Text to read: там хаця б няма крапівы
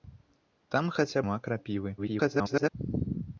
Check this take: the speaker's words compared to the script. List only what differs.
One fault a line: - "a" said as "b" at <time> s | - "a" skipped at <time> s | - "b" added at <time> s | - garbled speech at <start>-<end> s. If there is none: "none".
- "б" skipped at 1.2 s
- garbled speech at 2.0-2.7 s